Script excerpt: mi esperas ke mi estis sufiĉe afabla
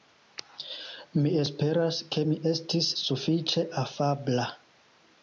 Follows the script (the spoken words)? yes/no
yes